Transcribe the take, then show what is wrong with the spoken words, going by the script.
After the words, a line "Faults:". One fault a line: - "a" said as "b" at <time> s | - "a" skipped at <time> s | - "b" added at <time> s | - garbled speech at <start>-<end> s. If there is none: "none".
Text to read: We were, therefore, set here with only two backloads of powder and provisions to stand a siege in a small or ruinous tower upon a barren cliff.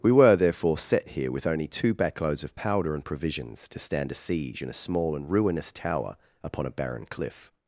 We were, therefore, set here with only two backloads of powder and provisions to stand a siege in a small and ruinous tower upon a barren cliff.
Faults:
- "or" said as "and" at 5.2 s